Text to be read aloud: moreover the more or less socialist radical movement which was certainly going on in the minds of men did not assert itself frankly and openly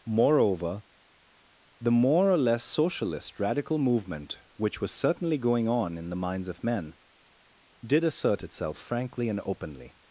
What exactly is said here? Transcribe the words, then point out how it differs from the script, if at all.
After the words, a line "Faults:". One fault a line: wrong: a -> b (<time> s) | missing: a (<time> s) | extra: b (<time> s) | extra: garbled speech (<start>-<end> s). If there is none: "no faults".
moreover the more or less socialist radical movement which was certainly going on in the minds of men did assert itself frankly and openly
Faults:
missing: not (8.0 s)